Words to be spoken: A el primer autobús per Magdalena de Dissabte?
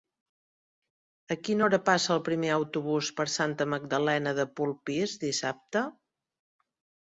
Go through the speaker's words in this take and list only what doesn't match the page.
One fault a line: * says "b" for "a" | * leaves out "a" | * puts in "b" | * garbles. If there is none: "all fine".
* puts in "quina hora passa"
* puts in "Santa"
* puts in "Polpís"